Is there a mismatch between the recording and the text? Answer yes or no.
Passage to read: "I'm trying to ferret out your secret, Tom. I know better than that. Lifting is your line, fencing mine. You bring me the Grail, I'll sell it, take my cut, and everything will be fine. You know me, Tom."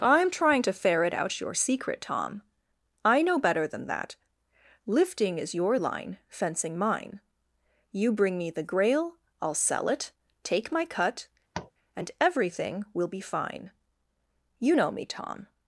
no